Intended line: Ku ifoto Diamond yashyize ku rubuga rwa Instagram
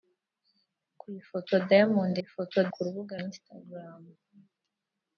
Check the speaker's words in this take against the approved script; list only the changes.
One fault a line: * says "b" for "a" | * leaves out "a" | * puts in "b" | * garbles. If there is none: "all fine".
* says "ifoto" for "yashyize"
* leaves out "rwa"